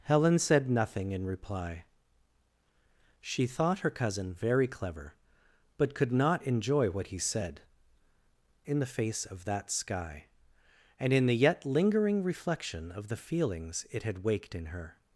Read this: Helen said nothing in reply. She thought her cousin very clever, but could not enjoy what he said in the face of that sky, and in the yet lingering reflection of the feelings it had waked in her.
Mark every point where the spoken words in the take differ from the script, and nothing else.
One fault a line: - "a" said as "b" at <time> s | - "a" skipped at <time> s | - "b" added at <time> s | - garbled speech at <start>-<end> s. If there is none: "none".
none